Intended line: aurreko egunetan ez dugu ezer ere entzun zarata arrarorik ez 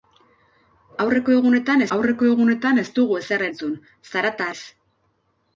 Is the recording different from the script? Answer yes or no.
yes